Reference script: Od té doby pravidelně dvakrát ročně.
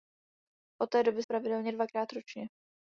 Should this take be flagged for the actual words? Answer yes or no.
no